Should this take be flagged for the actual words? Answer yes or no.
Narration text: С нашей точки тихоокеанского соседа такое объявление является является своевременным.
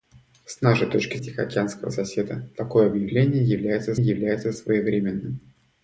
no